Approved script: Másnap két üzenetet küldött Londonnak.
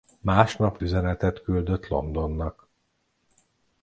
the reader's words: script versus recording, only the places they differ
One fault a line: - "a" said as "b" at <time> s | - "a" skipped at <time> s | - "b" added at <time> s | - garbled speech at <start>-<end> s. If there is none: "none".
- "két" skipped at 0.8 s